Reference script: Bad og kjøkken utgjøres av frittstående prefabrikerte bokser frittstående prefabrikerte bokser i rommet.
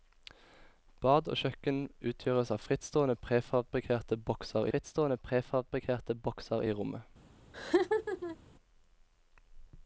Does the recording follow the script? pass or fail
pass